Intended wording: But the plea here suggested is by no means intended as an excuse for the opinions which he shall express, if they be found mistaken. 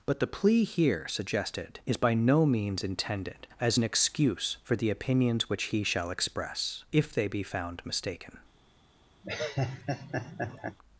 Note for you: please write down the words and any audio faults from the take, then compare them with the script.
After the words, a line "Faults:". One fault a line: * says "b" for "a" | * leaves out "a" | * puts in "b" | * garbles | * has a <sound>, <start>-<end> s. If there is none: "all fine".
But the plea here suggested is by no means intended as an excuse for the opinions which he shall express, if they be found mistaken.
Faults:
* has a laugh, 9.2-10.8 s